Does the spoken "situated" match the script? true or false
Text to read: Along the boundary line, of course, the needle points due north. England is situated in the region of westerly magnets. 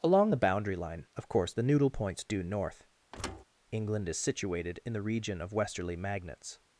true